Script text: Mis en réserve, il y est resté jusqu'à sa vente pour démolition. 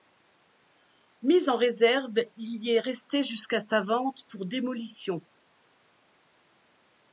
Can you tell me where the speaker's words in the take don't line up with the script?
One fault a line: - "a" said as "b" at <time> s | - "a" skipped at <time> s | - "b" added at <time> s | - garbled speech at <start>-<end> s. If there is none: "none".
none